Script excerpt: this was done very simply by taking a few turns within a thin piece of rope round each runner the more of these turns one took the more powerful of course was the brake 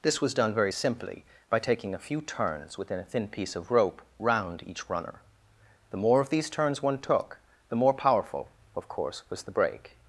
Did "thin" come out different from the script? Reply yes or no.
no